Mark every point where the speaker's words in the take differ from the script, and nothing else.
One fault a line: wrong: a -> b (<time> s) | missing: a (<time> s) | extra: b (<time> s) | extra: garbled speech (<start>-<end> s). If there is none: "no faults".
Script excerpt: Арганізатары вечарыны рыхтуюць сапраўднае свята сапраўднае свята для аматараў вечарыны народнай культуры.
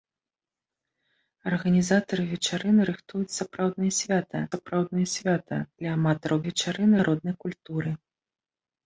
no faults